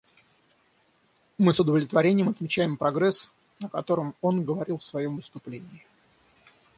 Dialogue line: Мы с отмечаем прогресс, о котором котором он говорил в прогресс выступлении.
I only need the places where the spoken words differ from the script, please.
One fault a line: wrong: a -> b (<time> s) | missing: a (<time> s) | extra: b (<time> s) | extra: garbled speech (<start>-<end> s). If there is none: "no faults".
extra: удовлетворением (1.6 s)
missing: котором (4.1 s)
wrong: прогресс -> своем (4.8 s)